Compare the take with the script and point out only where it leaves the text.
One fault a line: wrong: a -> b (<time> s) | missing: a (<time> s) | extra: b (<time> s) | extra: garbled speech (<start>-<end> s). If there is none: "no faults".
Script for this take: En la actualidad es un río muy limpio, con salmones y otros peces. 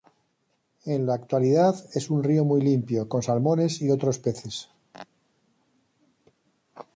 no faults